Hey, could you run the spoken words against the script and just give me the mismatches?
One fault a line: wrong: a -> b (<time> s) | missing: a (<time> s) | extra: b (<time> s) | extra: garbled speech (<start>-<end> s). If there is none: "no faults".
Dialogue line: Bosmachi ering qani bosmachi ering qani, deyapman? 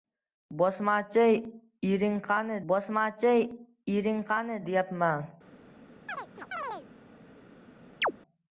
no faults